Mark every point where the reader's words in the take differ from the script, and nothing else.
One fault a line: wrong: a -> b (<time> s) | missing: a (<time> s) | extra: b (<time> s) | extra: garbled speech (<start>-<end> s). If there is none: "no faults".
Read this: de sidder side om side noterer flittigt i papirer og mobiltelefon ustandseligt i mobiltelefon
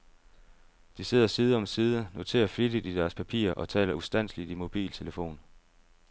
extra: deres (3.0 s)
wrong: mobiltelefon -> taler (3.7 s)